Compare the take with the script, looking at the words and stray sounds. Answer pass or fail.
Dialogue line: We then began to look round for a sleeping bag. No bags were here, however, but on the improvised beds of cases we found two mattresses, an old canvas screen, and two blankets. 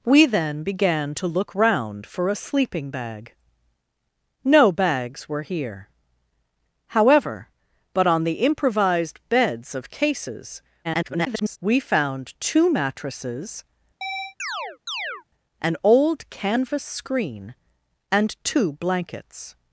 fail